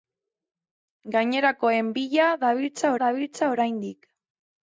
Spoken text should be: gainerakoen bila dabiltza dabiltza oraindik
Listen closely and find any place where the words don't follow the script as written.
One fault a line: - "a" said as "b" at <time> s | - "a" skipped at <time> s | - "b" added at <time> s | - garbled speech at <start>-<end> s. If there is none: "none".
none